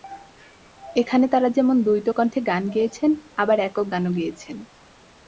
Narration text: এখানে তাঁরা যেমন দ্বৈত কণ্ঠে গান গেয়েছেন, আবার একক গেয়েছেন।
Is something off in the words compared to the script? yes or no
yes